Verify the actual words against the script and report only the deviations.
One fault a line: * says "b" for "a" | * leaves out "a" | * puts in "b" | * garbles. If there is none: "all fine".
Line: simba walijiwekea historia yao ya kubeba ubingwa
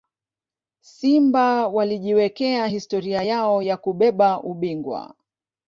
all fine